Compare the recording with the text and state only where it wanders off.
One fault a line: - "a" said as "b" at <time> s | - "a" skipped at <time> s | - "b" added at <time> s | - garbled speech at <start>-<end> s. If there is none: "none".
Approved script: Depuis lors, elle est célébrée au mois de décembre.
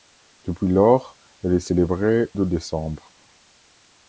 - "au mois" skipped at 2.3 s